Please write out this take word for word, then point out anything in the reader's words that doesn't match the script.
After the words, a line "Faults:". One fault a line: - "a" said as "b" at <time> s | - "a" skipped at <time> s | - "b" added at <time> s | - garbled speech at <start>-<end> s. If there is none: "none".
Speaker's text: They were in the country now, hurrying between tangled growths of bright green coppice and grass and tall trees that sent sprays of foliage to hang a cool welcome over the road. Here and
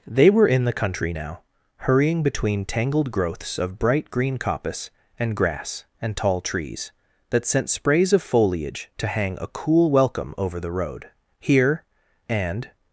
They were in the country now, hurrying between tangled growths of bright green coppice and grass and tall trees that sent sprays of foliage to hang a cool welcome over the road. Here and
Faults:
none